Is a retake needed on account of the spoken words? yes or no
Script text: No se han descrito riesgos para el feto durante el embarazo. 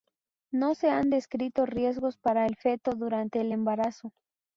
no